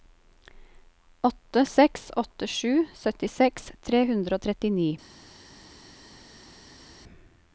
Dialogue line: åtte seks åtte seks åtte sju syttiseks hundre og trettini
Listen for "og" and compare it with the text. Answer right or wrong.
right